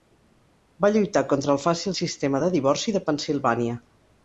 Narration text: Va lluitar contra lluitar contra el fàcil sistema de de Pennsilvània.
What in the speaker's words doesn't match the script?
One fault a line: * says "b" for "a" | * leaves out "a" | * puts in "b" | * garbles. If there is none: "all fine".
* leaves out "lluitar contra"
* puts in "divorci"